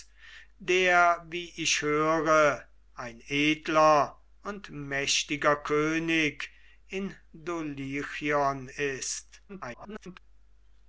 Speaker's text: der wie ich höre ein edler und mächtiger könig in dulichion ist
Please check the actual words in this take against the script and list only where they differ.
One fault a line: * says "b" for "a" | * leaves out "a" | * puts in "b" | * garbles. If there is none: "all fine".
* garbles